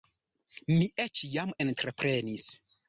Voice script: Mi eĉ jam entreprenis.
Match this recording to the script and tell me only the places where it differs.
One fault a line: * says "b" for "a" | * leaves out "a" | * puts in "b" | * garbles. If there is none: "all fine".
all fine